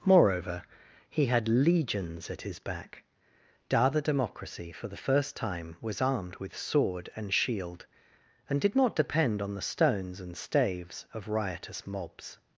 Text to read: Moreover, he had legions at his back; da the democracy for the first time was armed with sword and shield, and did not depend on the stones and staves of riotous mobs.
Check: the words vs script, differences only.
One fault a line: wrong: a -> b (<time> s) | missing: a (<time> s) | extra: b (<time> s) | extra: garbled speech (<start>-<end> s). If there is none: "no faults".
no faults